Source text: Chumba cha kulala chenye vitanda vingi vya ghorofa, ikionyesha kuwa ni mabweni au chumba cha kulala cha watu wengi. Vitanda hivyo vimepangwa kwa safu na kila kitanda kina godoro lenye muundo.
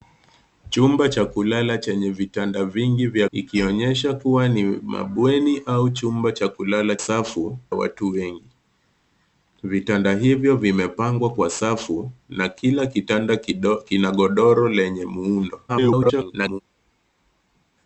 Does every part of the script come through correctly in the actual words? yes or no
no